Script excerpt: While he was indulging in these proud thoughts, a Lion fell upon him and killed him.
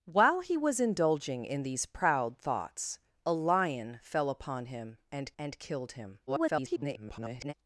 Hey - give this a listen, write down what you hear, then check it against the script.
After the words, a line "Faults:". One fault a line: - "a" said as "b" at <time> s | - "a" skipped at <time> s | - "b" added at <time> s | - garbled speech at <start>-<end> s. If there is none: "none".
While he was indulging in these proud thoughts, a Lion fell upon him and and killed him. [garbled]
Faults:
- "and" added at 5.4 s
- garbled speech at 6.3-7.5 s